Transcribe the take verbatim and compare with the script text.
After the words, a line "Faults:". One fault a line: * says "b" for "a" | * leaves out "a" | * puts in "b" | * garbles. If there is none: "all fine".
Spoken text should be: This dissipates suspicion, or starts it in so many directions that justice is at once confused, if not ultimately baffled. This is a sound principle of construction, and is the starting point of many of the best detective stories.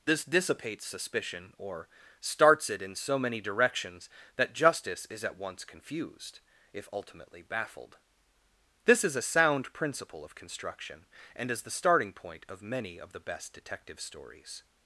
This dissipates suspicion, or starts it in so many directions that justice is at once confused, if ultimately baffled. This is a sound principle of construction, and is the starting point of many of the best detective stories.
Faults:
* leaves out "not"